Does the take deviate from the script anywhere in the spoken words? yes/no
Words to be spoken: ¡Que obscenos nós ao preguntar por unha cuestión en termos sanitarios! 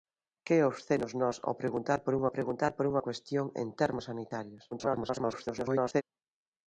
yes